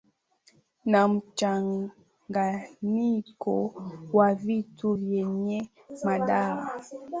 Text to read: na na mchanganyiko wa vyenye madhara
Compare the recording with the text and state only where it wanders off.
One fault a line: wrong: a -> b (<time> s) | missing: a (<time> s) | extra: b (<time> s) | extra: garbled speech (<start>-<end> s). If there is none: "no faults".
missing: na (1.1 s)
extra: vitu (4.3 s)